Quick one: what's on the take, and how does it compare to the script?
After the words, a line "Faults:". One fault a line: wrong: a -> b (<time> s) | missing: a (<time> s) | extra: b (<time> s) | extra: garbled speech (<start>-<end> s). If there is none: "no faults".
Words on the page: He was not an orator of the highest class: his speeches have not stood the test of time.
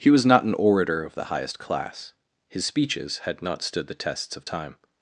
He was not an orator of the highest class: his speeches had not stood the tests of time.
Faults:
wrong: have -> had (3.2 s)
wrong: test -> tests (3.9 s)